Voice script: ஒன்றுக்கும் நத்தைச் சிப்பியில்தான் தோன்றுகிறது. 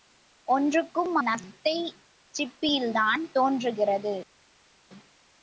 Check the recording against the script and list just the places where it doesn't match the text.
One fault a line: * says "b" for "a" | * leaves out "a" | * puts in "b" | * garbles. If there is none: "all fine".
all fine